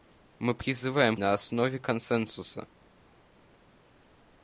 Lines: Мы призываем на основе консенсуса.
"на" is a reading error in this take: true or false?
false